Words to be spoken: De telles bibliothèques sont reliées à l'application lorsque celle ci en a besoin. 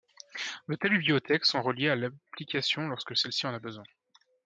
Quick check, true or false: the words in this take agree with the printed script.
true